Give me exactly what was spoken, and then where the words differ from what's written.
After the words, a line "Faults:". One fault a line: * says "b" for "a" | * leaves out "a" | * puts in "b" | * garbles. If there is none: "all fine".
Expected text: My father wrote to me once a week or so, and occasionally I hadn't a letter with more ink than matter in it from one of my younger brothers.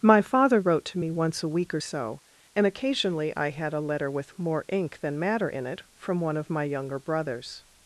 My father wrote to me once a week or so, and occasionally I had a letter with more ink than matter in it from one of my younger brothers.
Faults:
* says "had" for "hadn't"